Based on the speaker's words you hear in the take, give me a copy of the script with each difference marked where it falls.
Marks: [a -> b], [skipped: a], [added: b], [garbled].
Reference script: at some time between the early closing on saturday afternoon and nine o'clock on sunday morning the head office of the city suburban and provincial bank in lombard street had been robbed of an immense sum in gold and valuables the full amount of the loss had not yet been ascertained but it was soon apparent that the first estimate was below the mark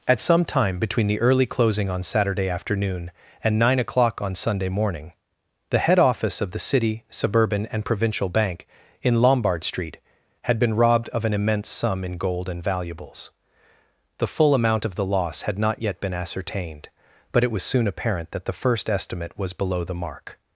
at some time between the early closing on saturday afternoon and nine o'clock on sunday morning the head office of the city suburban and provincial bank in lombard street had been robbed of an immense sum in gold and valuables the full amount of the loss had not yet been ascertained but it was soon apparent that the first estimate was below the mark